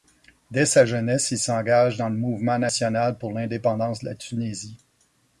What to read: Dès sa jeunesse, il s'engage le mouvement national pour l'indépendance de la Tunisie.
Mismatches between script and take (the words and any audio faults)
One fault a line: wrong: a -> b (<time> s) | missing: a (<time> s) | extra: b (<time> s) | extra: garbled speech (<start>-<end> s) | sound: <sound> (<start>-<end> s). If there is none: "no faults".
extra: dans (2.0 s)